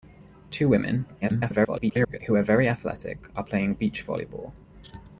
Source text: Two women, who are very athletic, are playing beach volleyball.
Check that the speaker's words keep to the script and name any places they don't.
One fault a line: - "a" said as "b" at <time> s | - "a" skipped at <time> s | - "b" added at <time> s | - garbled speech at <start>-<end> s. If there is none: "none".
- garbled speech at 1.2-2.2 s